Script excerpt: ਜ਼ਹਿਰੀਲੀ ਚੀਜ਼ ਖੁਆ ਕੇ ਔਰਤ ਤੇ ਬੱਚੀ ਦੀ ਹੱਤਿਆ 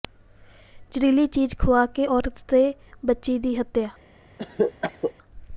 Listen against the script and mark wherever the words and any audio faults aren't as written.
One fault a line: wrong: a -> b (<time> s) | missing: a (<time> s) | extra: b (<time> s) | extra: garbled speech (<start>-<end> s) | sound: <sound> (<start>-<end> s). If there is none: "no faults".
sound: cough (4.4-5.1 s)